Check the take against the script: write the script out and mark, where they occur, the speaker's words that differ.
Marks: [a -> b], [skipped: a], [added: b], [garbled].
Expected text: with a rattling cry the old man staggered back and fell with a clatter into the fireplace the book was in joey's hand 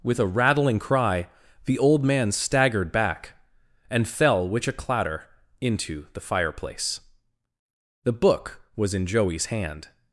with a rattling cry the old man staggered back and fell [with -> which] a clatter into the fireplace the book was in joey's hand